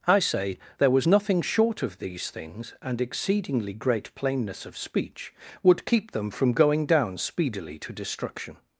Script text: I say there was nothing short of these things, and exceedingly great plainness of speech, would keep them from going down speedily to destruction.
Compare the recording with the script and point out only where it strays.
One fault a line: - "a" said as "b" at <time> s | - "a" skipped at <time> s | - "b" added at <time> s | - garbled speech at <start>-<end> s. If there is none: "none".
none